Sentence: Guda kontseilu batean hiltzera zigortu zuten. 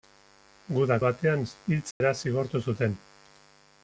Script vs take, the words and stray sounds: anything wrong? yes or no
yes